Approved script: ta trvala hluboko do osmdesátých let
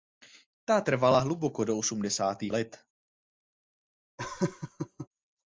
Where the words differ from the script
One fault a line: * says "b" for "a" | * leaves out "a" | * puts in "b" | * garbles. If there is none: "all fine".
all fine